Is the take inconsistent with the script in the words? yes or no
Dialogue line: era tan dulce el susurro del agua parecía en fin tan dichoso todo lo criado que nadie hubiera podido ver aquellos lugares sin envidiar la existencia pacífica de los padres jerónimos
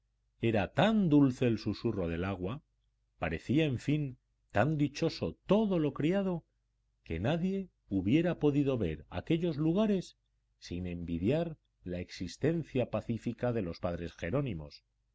no